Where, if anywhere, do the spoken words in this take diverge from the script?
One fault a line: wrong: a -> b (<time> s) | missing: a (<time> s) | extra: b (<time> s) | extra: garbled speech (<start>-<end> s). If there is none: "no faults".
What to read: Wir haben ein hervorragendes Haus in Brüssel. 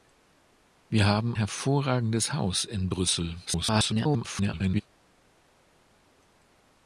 missing: ein (1.4 s)
extra: garbled speech (3.5-4.8 s)